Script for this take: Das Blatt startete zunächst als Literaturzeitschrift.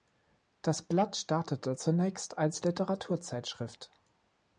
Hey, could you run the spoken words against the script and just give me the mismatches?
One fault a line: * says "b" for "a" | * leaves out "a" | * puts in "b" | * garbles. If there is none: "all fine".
all fine